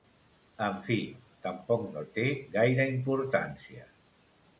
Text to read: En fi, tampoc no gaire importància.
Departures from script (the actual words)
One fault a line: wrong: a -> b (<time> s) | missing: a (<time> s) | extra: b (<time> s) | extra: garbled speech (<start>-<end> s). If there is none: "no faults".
extra: té (2.1 s)